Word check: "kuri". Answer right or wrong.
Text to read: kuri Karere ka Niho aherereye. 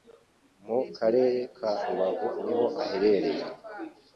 wrong